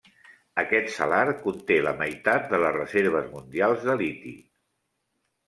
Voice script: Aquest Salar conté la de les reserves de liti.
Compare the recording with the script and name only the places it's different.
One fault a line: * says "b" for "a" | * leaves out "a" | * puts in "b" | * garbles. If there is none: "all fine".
* puts in "meitat"
* puts in "mundials"